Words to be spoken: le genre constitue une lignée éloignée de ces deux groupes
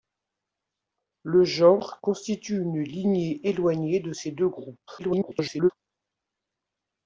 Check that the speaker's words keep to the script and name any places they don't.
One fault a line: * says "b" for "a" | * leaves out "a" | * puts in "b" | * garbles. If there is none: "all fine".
* garbles